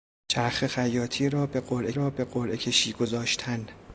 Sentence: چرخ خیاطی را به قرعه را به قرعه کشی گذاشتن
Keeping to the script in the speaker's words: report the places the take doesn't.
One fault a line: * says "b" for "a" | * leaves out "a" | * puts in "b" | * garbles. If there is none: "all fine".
all fine